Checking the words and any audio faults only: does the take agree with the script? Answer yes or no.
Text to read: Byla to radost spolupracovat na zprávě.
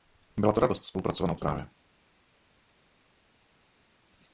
yes